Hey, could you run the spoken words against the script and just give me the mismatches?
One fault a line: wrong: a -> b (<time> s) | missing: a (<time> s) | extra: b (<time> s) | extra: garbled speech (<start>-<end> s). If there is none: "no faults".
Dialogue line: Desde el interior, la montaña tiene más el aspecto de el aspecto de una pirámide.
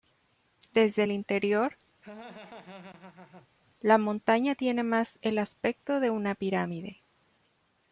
missing: el aspecto de (6.1 s)